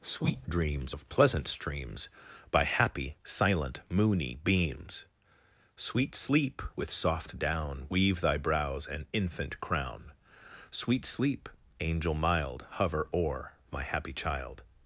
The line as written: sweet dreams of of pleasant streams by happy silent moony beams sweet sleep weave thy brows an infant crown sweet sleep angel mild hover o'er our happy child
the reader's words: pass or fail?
fail